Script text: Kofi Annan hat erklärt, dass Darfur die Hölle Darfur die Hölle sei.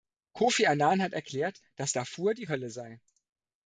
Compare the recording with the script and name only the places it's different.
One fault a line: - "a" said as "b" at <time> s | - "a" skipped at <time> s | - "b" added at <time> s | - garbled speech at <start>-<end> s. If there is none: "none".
- "Darfur die Hölle" skipped at 2.7 s